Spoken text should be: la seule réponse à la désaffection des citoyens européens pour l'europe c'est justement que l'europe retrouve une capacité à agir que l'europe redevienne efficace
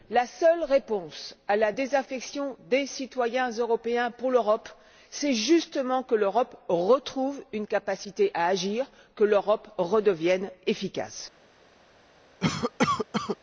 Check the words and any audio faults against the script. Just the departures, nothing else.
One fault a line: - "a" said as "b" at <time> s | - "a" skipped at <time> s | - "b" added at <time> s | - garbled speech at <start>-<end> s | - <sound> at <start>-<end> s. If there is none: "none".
- cough at 12.4-13.4 s